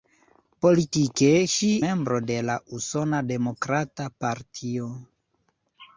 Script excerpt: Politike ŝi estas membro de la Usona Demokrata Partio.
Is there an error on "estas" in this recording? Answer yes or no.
yes